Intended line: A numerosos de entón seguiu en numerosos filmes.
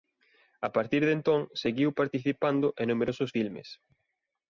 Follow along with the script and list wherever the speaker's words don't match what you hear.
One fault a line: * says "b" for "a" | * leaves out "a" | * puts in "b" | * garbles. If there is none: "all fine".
* says "partir" for "numerosos"
* puts in "participando"